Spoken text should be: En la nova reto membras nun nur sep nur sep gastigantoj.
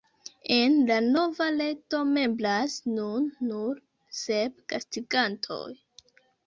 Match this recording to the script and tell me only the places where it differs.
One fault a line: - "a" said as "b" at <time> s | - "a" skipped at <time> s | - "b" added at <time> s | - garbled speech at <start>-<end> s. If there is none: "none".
- "nur sep" skipped at 4.7 s